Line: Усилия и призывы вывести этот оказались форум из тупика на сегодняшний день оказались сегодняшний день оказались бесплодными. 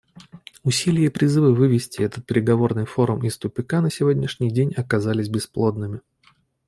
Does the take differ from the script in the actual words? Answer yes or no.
yes